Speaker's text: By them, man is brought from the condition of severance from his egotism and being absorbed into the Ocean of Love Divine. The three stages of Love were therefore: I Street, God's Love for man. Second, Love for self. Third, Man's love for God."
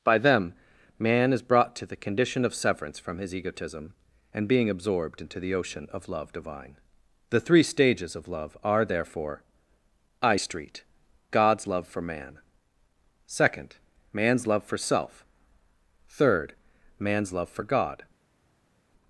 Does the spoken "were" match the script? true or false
false